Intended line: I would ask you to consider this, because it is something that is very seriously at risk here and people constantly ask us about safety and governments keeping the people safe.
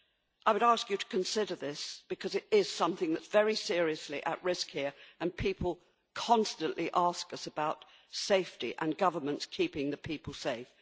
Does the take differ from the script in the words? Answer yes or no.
no